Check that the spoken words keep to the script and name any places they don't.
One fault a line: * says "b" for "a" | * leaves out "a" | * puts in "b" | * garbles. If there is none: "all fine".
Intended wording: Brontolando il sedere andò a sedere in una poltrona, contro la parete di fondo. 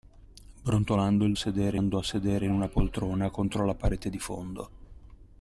all fine